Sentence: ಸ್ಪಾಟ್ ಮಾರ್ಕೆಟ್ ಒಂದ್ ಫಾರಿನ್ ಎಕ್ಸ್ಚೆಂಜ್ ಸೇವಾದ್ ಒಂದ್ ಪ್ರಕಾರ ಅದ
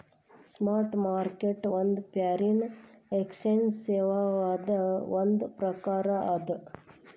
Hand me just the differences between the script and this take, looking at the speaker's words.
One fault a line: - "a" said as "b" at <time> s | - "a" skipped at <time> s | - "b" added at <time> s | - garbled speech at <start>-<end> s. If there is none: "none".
none